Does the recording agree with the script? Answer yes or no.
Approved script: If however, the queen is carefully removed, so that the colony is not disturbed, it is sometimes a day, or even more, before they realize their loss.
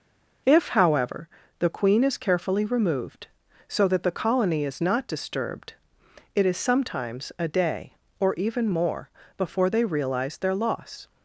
yes